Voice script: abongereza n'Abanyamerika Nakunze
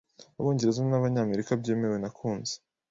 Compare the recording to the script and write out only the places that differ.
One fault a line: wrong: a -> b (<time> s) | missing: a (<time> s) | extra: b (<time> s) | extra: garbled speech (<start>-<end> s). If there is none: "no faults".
extra: byemewe (1.6 s)